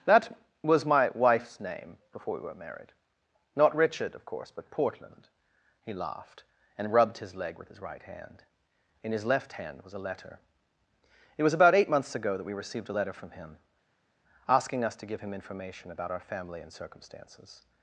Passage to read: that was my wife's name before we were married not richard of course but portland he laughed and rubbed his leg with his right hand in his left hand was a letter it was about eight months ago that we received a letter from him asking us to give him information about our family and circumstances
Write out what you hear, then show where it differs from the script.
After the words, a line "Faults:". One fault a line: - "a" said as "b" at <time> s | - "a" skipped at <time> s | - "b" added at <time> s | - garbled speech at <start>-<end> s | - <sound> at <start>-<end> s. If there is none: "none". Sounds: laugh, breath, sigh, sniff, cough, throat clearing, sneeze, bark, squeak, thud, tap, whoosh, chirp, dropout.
that was my wife's name before we were married not richard of course but portland he laughed and rubbed his leg with his right hand in his left hand was a letter it was about eight months ago that we received a letter from him asking us to give him information about our family and circumstances
Faults:
none